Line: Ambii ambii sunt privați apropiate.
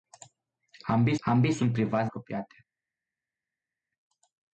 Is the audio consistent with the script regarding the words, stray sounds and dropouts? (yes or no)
yes